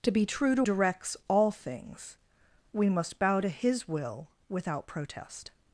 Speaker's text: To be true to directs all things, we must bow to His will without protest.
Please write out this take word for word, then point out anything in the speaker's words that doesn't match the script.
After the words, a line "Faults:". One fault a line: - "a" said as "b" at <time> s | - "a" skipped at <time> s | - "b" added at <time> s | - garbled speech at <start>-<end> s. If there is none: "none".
To be true to directs all things, we must bow to His will without protest.
Faults:
none